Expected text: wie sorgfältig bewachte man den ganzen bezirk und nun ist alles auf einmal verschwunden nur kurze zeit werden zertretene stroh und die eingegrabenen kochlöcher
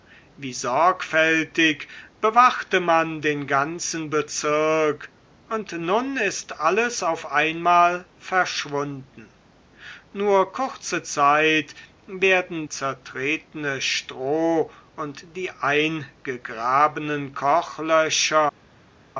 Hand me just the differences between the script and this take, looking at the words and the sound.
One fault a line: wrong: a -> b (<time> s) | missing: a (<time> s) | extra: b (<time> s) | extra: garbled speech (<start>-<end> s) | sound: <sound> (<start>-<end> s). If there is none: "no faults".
no faults